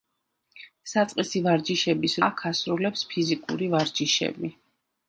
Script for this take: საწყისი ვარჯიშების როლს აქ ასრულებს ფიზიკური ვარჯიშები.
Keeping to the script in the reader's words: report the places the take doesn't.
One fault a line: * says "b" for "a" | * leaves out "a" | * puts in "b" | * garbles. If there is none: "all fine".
* leaves out "როლს"